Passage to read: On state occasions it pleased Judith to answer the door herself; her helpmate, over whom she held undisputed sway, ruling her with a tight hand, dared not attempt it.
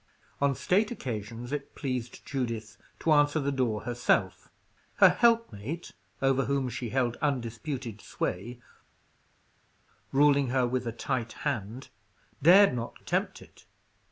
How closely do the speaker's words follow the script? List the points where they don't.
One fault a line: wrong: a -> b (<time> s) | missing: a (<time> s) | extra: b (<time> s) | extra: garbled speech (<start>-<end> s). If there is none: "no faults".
no faults